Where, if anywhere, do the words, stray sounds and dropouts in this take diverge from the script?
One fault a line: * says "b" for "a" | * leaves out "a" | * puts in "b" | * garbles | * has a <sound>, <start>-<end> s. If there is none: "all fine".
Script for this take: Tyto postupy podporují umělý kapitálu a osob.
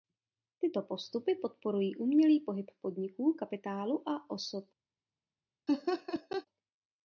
* puts in "pohyb podniků"
* has a laugh, 5.7-6.5 s